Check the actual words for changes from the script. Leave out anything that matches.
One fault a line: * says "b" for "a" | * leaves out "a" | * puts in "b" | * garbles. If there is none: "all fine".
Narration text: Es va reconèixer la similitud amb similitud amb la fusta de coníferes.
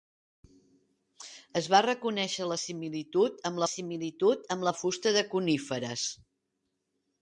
all fine